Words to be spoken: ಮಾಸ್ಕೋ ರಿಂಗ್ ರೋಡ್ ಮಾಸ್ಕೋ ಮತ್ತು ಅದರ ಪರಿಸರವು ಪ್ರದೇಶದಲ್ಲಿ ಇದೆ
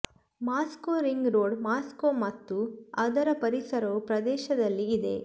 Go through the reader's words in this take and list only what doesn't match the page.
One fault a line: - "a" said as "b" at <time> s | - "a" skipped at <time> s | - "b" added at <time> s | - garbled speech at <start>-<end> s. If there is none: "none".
none